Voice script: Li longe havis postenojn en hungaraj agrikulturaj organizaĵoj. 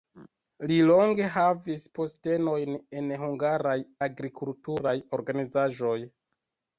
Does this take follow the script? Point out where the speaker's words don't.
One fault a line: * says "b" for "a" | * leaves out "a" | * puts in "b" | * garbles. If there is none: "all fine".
all fine